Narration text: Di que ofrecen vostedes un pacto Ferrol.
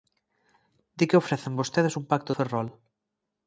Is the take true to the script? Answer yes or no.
yes